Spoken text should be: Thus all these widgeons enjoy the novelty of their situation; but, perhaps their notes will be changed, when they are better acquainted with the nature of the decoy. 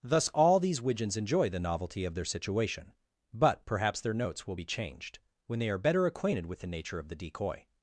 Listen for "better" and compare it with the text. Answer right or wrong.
right